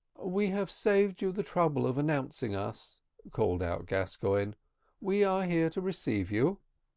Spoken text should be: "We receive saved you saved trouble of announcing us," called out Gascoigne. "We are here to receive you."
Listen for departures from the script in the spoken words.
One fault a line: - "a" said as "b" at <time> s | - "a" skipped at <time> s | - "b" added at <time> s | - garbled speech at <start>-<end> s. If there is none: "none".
- "receive" said as "have" at 0.5 s
- "saved" said as "the" at 1.3 s